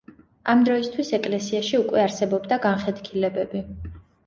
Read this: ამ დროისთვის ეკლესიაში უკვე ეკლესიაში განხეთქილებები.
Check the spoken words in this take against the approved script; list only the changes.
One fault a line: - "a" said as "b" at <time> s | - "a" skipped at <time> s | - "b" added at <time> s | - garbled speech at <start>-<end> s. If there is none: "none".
- "ეკლესიაში" said as "არსებობდა" at 2.0 s